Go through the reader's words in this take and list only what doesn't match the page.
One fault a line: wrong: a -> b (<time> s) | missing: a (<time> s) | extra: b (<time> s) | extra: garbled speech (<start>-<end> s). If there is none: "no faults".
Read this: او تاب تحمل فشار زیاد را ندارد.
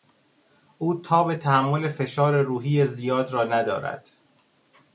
extra: روحی (2.4 s)